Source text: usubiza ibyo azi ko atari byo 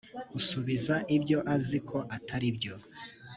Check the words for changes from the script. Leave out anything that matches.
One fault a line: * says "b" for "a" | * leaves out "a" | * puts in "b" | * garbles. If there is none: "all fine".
all fine